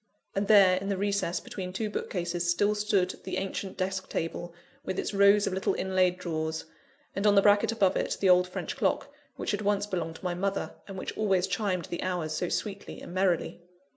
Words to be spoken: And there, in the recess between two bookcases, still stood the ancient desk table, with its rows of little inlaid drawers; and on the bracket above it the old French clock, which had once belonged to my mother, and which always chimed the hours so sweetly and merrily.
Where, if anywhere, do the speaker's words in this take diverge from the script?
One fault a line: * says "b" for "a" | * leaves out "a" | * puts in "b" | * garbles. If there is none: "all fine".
all fine